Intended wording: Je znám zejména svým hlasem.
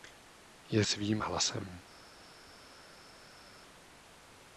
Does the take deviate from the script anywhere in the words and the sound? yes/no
yes